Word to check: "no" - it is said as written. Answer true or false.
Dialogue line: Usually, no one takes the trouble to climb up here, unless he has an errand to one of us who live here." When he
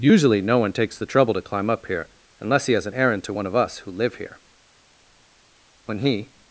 true